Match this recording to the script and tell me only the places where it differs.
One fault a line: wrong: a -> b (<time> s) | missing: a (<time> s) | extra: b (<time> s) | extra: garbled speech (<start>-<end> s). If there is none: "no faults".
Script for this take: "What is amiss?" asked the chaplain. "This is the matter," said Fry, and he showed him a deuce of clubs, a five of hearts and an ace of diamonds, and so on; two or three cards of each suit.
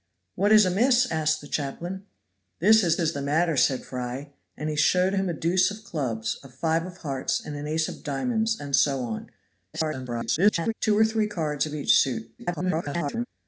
extra: is (3.0 s)
extra: garbled speech (9.7-10.7 s)
extra: garbled speech (12.4-13.3 s)